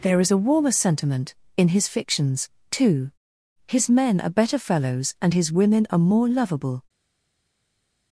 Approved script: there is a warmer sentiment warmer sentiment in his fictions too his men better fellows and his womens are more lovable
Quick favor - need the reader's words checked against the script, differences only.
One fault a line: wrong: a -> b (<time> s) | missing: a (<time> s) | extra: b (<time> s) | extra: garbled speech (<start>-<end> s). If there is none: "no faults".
missing: warmer sentiment (1.4 s)
extra: are (4.2 s)
wrong: womens -> women (5.5 s)